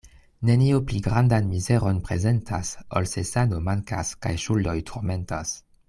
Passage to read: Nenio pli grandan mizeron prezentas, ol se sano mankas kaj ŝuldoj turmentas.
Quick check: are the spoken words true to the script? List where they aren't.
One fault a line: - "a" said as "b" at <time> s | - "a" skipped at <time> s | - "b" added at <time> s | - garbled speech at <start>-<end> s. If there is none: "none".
none